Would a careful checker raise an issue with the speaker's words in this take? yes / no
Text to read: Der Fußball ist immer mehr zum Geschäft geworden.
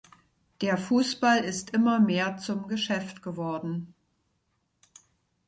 no